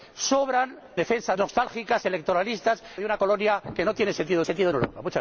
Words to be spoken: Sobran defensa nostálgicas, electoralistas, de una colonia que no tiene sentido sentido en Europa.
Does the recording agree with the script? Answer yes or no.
yes